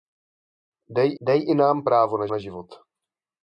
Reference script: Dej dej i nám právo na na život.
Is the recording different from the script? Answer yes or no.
no